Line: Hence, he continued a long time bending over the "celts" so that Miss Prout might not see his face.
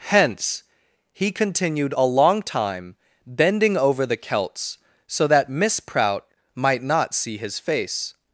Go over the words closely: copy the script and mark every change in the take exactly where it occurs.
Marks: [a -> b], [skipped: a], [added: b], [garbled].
Hence, he continued a long time bending over the "celts" so that Miss Prout might not see his face.